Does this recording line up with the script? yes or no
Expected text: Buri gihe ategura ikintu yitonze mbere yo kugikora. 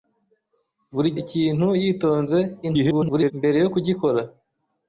no